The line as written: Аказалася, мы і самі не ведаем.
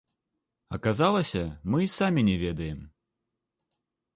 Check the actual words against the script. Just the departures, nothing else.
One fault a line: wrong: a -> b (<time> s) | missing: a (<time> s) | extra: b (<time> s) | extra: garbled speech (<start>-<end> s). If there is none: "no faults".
no faults